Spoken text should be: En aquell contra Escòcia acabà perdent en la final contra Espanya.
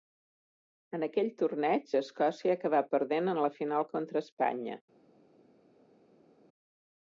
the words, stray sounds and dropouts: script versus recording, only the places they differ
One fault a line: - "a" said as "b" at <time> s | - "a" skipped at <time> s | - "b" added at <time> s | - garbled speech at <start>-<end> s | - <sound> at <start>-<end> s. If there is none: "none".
- "contra" said as "torneig" at 1.4 s